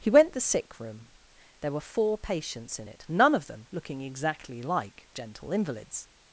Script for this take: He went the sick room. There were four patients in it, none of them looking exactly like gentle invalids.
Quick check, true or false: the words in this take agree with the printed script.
true